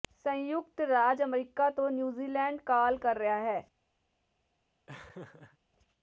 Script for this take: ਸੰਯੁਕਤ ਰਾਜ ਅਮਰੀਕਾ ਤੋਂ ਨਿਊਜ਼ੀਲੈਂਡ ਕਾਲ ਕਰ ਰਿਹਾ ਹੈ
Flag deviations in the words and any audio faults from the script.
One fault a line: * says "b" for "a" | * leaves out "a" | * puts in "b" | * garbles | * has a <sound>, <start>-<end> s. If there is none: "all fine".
* has a laugh, 4.9-5.6 s